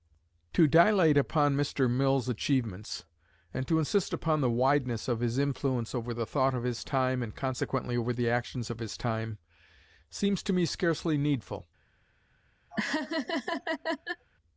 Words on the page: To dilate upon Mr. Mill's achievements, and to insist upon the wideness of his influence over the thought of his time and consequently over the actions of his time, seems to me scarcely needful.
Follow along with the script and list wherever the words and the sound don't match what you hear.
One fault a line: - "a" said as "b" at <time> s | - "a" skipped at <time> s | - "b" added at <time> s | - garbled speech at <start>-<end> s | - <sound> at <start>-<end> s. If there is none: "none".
- laugh at 12.7-14.3 s